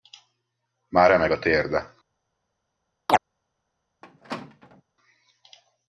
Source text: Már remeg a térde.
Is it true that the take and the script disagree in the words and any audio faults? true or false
true